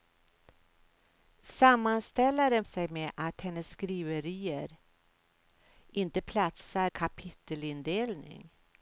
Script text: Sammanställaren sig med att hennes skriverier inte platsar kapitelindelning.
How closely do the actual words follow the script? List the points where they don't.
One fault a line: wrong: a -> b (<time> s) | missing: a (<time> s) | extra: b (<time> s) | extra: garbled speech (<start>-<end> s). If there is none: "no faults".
no faults